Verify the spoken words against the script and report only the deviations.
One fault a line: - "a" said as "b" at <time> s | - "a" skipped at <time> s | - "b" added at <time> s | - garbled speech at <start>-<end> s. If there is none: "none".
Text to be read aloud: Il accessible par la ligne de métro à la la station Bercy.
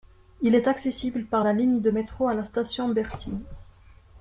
- "est" added at 0.6 s
- "la" skipped at 2.4 s